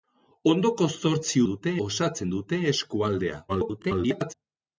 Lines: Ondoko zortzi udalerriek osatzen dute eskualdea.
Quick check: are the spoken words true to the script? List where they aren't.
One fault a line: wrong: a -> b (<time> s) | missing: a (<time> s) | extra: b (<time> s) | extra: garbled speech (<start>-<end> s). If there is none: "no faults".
wrong: udalerriek -> dute (1.5 s)
extra: garbled speech (3.5-4.3 s)